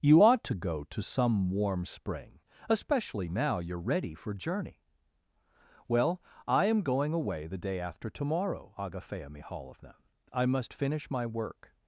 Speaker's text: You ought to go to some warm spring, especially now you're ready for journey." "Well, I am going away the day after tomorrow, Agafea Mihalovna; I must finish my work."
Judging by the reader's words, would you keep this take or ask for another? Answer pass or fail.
pass